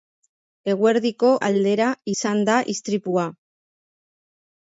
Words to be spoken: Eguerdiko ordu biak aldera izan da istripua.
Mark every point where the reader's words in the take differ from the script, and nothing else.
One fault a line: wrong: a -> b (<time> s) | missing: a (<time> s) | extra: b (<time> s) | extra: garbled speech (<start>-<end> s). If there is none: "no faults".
missing: ordu biak (1.3 s)